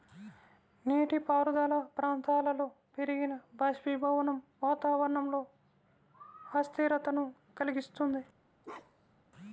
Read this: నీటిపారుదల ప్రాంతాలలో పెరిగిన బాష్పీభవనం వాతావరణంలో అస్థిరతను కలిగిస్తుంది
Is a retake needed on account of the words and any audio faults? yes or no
yes